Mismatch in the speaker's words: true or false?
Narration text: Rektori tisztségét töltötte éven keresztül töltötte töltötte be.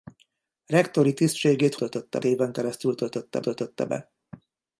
false